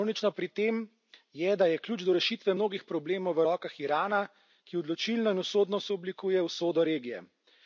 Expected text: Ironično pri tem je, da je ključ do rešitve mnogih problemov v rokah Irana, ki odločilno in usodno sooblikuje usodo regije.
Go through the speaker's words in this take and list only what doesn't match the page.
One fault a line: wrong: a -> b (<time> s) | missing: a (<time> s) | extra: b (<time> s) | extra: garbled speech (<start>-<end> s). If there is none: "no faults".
no faults